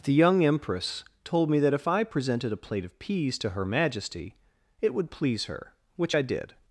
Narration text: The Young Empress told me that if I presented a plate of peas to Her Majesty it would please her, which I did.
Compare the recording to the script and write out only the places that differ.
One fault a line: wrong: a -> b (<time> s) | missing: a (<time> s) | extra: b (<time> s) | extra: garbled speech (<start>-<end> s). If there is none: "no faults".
no faults